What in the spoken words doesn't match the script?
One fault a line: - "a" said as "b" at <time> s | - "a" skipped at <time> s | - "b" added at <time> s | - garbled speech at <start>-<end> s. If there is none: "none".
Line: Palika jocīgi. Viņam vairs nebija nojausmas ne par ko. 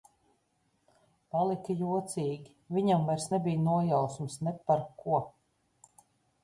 none